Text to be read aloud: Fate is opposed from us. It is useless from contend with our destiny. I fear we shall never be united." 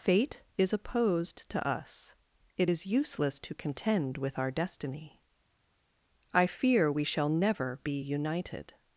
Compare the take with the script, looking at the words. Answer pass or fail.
fail